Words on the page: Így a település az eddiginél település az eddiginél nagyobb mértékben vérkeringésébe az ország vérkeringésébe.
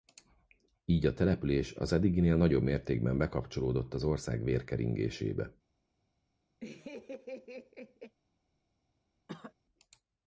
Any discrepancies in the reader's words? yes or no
yes